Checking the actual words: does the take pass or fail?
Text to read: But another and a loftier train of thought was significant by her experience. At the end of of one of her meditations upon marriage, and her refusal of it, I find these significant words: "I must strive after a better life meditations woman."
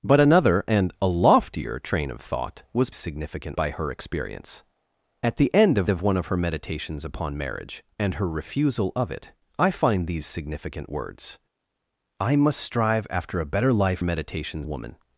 pass